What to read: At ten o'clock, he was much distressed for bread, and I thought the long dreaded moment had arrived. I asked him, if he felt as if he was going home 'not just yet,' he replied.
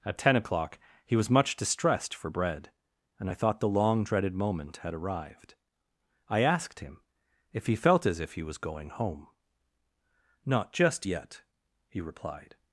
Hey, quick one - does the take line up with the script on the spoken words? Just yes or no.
yes